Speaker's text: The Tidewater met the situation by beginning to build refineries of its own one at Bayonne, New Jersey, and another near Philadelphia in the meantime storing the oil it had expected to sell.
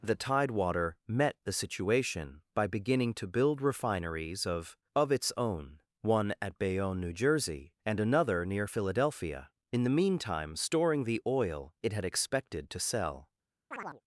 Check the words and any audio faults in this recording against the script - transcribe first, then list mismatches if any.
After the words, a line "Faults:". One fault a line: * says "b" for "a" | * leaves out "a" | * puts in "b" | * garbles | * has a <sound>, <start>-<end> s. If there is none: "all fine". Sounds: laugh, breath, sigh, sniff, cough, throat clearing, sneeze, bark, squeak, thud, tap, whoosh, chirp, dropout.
The Tidewater met the situation by beginning to build refineries of of its own one at Bayonne, New Jersey, and another near Philadelphia in the meantime storing the oil it had expected to sell.
Faults:
* puts in "of"
* has a chirp, 13.7-14.0 s